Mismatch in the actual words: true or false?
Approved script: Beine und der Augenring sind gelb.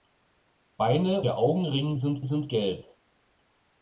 true